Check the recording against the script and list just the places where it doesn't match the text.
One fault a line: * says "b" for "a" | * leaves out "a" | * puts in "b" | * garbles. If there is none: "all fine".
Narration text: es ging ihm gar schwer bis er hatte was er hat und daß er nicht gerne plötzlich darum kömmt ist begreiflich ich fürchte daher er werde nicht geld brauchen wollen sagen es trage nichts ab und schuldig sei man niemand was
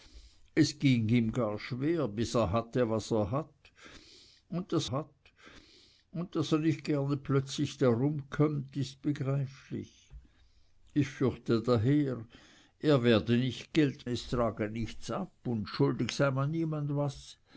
* puts in "hat und daß"
* leaves out "brauchen wollen sagen"